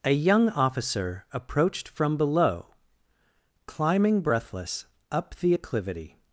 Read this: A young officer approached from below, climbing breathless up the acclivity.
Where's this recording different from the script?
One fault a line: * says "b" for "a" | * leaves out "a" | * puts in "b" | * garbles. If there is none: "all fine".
all fine